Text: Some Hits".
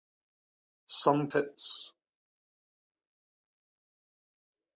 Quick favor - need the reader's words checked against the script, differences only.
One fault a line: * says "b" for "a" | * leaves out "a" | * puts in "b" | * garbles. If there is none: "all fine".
all fine